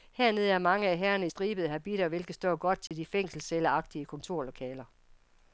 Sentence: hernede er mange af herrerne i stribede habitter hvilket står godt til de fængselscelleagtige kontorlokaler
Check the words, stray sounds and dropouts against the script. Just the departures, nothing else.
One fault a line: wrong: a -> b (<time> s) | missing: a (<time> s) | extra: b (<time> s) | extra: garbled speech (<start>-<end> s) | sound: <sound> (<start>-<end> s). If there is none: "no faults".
sound: dropout (2.9-2.9 s)